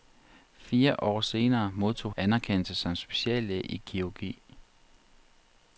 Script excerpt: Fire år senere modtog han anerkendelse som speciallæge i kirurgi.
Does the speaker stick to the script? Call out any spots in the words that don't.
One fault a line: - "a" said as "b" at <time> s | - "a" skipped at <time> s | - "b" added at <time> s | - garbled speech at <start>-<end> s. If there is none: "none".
- "han" skipped at 2.1 s